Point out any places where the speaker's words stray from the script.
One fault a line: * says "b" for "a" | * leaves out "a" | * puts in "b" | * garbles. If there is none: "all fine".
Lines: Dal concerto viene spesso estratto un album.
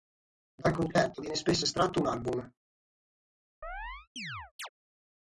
all fine